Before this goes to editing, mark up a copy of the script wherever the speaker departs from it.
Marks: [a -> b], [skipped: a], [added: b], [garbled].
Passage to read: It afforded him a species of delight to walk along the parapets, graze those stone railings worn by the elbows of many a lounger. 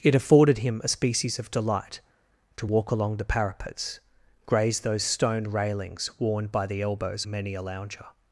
It afforded him a species of delight to walk along the parapets, graze those stone railings worn by the elbows [skipped: of] many a lounger.